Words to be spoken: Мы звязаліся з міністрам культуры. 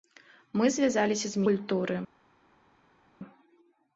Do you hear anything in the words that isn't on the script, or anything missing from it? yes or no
yes